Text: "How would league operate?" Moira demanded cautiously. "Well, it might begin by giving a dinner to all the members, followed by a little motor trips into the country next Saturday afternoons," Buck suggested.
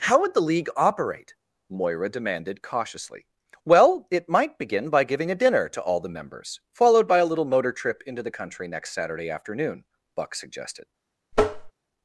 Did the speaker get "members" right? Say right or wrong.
right